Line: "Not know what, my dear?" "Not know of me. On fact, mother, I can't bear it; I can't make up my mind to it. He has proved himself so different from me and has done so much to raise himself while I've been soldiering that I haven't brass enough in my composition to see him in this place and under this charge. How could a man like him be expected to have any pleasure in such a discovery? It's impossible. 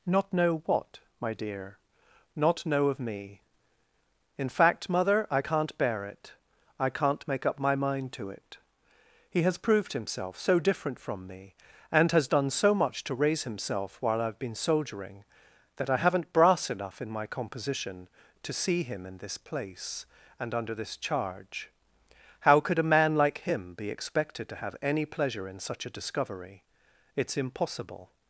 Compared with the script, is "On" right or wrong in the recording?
wrong